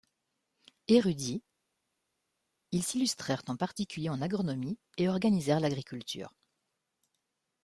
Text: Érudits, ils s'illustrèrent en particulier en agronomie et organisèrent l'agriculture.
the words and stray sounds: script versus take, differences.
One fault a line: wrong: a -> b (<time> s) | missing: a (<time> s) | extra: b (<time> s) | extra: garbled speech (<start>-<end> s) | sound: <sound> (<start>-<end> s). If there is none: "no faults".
no faults